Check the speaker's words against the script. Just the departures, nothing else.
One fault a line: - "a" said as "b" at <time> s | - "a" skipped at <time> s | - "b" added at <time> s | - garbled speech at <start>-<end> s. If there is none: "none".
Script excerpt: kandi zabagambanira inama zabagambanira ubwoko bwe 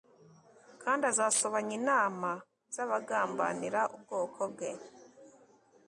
- "zabagambanira" said as "azasobanya" at 1.1 s